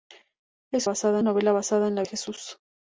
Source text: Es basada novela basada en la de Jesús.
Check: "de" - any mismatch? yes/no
no